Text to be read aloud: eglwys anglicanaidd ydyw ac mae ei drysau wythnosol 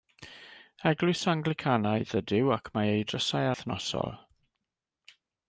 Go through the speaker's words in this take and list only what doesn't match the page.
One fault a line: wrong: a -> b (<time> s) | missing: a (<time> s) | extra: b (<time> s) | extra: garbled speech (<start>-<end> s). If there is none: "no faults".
no faults